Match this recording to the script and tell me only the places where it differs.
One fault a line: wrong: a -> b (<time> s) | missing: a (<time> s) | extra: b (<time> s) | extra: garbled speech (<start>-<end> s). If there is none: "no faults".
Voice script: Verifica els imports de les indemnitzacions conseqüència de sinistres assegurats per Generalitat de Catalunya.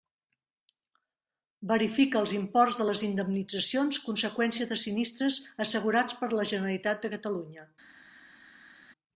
extra: la (6.4 s)